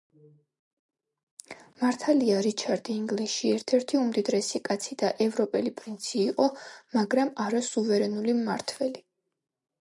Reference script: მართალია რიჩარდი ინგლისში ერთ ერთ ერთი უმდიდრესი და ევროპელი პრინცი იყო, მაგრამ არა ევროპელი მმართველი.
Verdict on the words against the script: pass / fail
fail